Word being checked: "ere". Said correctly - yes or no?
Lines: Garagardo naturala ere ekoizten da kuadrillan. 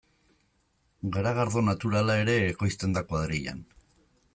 yes